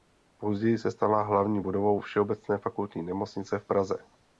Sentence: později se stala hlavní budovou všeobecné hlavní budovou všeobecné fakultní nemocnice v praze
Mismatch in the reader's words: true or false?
true